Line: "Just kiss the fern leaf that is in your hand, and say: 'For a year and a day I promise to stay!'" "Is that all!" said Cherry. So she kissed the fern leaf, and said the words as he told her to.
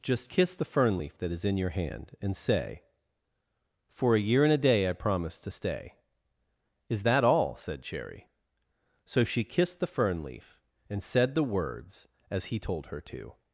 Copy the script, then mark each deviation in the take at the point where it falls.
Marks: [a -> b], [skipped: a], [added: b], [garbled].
"Just kiss the fern leaf that is in your hand, and say: 'For a year and a day I promise to stay!'" "Is that all!" said Cherry. So she kissed the fern leaf, and said the words as he told her to.